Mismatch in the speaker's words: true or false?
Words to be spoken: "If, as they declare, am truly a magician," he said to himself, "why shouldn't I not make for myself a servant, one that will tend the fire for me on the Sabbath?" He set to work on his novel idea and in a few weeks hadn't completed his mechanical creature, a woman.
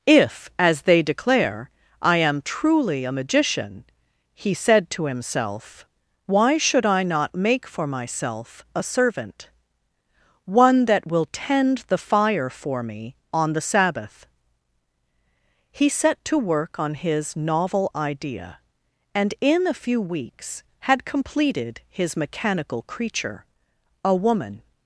true